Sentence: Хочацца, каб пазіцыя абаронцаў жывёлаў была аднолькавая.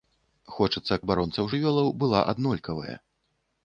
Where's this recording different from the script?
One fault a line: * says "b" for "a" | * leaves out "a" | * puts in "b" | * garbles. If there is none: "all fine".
* leaves out "каб пазіцыя"